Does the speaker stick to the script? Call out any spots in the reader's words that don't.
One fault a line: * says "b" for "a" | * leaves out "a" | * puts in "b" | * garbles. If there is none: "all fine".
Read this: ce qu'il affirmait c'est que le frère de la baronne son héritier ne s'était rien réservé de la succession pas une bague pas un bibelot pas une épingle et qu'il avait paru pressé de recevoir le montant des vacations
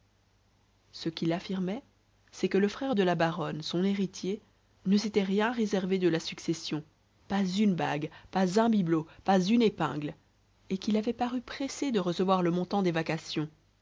all fine